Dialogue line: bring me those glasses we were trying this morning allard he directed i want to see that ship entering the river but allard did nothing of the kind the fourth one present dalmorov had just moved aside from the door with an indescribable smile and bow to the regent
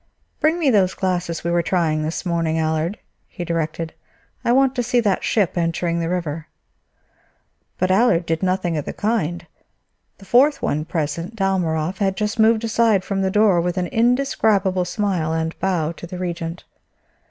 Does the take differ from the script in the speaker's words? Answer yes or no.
no